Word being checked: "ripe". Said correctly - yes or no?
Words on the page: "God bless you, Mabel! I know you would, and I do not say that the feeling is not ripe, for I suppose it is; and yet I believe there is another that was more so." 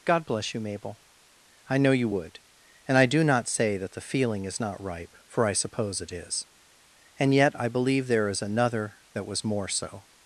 yes